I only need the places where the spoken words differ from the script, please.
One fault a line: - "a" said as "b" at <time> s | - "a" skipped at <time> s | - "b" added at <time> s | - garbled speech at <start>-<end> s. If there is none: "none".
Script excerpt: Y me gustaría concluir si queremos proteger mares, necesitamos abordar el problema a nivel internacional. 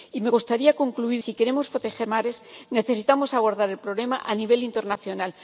none